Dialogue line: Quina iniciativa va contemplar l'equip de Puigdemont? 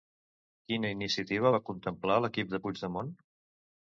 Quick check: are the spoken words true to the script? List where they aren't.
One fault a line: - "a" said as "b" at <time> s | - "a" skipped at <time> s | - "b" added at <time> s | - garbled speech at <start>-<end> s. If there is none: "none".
none